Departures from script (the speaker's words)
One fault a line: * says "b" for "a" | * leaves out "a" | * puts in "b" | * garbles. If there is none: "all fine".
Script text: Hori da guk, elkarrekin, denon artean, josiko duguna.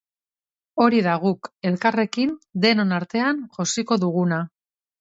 all fine